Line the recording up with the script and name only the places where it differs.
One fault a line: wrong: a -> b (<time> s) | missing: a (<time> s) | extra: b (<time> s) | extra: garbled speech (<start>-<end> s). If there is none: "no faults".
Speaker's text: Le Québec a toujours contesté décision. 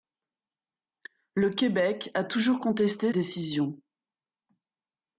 no faults